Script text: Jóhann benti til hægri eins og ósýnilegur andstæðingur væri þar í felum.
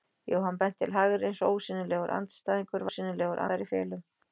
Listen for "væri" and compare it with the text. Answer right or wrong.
wrong